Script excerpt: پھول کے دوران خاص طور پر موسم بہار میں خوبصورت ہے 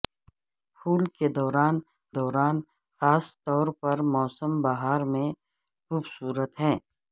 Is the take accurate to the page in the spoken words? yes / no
no